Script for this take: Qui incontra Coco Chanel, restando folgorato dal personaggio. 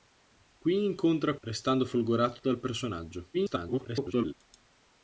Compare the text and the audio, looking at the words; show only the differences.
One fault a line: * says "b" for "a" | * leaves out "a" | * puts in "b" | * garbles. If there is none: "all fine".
* leaves out "Coco Chanel"
* garbles